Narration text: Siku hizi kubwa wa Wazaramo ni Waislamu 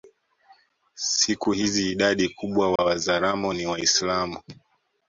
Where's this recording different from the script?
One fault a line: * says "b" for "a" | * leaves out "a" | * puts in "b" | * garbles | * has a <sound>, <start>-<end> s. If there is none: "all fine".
* puts in "idadi"
* has a dropout, 2.8-2.8 s